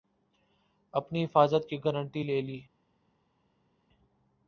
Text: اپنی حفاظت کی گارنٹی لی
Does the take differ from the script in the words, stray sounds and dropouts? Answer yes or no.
yes